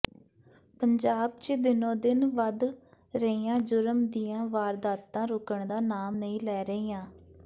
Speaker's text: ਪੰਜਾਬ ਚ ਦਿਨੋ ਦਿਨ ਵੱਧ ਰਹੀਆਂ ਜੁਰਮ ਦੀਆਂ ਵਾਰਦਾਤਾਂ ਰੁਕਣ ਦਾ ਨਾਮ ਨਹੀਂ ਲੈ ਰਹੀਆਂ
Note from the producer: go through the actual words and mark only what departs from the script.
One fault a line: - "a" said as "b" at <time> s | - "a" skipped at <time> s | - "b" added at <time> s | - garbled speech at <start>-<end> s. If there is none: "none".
none